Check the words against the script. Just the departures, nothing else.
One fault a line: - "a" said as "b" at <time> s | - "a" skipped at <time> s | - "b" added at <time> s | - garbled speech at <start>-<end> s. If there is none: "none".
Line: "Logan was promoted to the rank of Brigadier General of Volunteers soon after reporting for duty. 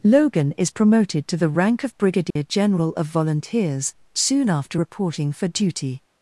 - "was" said as "is" at 0.5 s